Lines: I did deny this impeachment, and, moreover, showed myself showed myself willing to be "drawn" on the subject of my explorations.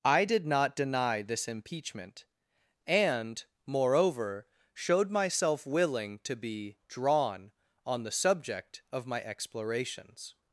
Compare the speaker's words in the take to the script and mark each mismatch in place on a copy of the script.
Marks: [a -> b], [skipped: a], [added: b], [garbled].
I did [added: not] deny this impeachment, and, moreover, showed myself [skipped: showed myself] willing to be "drawn" on the subject of my explorations.